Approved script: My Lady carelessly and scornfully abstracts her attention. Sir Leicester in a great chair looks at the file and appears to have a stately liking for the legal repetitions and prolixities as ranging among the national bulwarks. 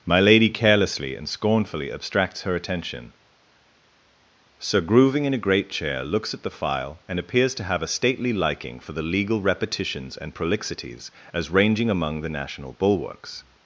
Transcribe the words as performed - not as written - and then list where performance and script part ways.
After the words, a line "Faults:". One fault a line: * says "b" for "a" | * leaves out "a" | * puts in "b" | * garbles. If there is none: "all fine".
My Lady carelessly and scornfully abstracts her attention. Sir Grooving in a great chair looks at the file and appears to have a stately liking for the legal repetitions and prolixities as ranging among the national bulwarks.
Faults:
* says "Grooving" for "Leicester"